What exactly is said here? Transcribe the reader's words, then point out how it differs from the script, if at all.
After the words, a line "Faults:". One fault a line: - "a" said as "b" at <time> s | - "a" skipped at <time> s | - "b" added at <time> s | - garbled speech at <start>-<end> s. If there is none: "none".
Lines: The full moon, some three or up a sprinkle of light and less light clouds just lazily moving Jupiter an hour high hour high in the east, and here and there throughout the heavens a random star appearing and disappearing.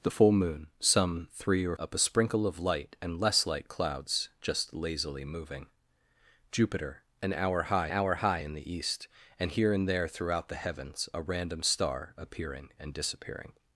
The full moon, some three or up a sprinkle of light and less light clouds just lazily moving Jupiter an hour high hour high in the east, and here and there throughout the heavens a random star appearing and disappearing.
Faults:
none